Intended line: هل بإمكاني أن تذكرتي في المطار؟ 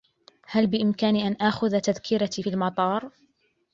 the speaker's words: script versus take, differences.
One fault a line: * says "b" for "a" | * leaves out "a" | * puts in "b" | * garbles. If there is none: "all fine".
* puts in "آخذ"